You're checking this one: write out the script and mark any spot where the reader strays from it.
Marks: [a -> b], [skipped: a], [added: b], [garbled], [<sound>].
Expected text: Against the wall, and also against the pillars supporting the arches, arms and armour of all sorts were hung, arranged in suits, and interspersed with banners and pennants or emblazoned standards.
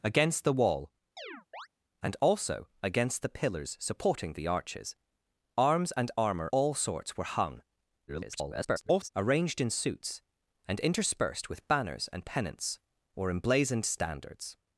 Against the wall, [chirp] and also against the pillars supporting the arches, arms and armour [skipped: of] all sorts were hung, [garbled] arranged in suits, and interspersed with banners and pennants or emblazoned standards.